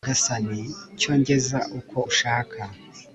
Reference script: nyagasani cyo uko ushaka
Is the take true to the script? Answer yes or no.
no